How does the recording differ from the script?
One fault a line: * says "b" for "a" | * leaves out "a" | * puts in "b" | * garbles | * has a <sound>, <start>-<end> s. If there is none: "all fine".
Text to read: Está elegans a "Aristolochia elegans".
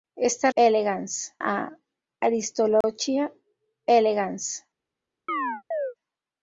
* has a dropout, 2.8-2.8 s
* has a chirp, 5.3-5.9 s